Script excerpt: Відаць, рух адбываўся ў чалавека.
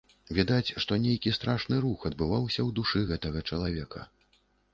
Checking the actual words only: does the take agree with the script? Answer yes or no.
no